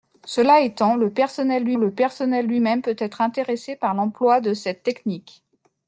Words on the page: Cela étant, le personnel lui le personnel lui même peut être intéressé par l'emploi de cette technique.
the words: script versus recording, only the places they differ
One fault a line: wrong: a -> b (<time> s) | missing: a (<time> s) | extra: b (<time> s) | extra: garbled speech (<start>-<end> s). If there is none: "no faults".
no faults